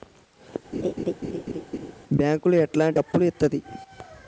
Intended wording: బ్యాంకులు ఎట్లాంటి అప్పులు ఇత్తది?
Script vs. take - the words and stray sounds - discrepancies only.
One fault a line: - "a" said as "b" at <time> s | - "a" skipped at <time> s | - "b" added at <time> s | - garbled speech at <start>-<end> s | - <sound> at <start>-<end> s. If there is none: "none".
- laugh at 0.7-1.9 s